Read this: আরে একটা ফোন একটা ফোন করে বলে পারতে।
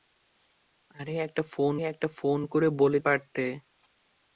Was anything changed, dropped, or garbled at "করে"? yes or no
no